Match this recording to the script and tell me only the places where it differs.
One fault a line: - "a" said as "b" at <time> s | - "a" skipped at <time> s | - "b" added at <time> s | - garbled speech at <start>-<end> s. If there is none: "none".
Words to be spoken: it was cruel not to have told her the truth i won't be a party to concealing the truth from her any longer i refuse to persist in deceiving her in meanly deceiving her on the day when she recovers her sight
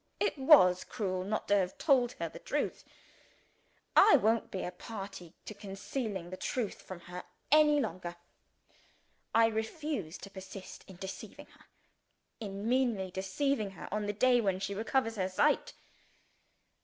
none